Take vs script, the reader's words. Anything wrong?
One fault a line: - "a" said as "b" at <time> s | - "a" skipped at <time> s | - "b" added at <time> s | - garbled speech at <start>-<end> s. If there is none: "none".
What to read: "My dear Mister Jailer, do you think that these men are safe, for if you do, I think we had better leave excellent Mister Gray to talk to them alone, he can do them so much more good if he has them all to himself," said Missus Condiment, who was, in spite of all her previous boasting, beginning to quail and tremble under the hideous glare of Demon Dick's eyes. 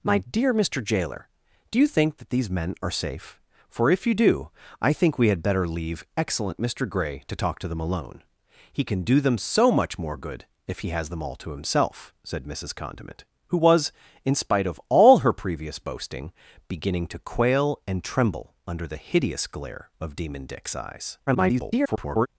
- garbled speech at 21.3-22.3 s